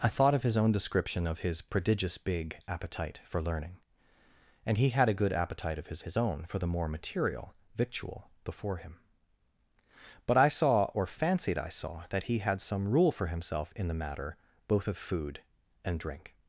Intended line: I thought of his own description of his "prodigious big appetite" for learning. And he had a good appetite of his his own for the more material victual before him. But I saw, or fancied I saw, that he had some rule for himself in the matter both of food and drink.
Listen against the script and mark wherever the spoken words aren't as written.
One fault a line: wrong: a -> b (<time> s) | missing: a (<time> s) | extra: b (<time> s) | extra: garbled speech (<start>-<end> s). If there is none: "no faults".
no faults